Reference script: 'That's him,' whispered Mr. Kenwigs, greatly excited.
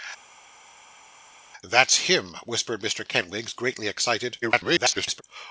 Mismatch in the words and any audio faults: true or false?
true